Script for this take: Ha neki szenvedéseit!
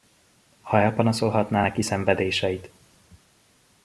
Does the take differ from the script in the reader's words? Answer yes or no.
yes